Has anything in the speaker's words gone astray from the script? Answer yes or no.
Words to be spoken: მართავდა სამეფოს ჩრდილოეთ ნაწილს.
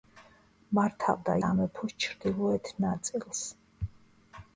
no